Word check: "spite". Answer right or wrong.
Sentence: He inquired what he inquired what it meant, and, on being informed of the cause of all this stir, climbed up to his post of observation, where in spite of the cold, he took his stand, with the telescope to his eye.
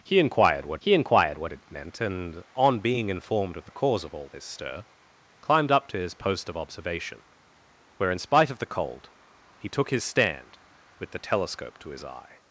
right